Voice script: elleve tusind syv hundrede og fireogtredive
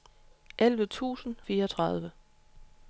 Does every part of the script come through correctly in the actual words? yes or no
no